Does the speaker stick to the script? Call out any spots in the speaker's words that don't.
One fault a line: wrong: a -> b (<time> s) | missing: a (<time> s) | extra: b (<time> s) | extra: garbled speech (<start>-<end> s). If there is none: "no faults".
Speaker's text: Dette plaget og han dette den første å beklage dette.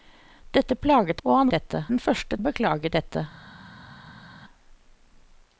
no faults